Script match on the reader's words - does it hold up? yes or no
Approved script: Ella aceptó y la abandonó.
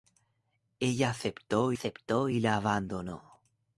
no